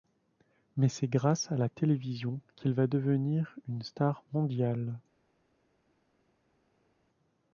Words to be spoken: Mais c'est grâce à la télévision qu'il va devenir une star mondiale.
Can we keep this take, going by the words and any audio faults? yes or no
yes